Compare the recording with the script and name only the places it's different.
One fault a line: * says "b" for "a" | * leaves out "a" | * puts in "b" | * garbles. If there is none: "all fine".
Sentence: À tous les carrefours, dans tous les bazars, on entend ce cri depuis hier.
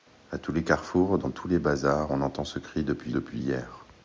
* puts in "depuis"